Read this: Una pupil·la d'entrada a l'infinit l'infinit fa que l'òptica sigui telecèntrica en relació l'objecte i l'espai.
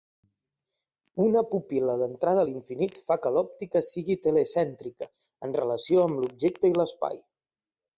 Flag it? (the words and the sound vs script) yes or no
yes